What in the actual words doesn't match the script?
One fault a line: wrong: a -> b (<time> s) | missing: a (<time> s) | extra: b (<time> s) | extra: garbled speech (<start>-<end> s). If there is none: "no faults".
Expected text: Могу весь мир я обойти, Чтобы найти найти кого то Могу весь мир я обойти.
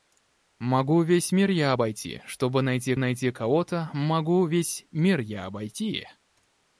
no faults